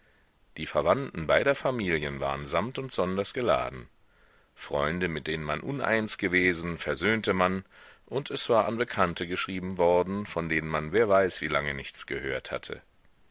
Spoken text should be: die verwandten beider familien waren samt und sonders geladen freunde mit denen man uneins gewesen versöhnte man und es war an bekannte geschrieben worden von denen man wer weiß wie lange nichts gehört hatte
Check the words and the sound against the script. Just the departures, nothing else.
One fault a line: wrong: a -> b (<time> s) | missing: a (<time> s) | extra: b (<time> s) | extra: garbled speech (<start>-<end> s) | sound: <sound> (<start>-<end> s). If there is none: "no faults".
no faults